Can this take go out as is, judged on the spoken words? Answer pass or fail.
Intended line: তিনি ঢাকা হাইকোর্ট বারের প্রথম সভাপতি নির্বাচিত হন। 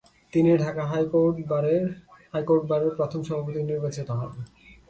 pass